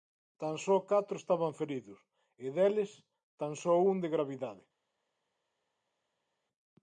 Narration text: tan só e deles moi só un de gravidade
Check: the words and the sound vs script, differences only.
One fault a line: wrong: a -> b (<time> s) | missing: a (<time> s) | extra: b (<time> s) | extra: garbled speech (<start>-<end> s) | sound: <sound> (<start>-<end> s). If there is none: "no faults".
extra: catro estaban feridos (0.9 s)
wrong: moi -> tan (3.4 s)